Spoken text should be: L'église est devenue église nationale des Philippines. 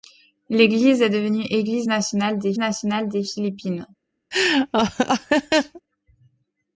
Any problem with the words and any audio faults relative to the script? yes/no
yes